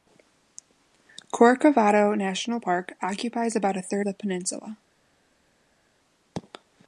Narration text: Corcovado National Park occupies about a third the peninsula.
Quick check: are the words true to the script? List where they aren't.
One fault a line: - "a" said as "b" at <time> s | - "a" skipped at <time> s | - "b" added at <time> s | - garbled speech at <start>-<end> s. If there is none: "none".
none